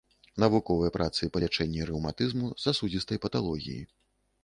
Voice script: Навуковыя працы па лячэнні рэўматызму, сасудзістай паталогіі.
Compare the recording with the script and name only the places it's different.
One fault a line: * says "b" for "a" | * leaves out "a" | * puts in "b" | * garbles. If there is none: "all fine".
all fine